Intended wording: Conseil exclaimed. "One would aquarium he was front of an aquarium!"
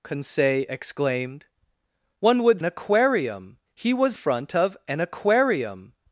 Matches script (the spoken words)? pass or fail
pass